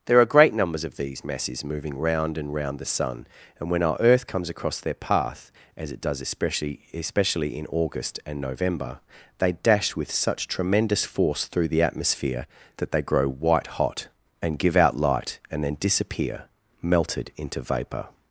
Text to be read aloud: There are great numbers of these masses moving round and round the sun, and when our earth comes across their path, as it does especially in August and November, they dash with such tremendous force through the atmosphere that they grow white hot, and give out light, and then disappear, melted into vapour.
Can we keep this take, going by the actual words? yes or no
no